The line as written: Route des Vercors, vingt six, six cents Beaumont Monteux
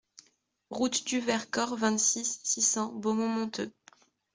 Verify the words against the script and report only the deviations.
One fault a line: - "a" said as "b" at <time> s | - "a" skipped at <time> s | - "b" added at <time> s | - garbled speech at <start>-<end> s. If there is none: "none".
- "des" said as "du" at 1.1 s